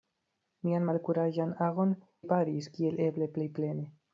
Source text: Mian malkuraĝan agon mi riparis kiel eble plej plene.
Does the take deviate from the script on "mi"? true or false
true